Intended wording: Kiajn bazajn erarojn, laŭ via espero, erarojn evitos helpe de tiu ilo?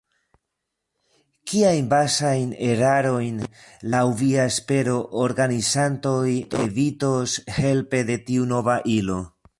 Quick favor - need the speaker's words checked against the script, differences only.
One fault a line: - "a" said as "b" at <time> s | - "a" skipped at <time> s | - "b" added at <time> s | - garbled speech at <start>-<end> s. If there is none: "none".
- "erarojn" said as "organizantoj" at 5.3 s
- "nova" added at 8.5 s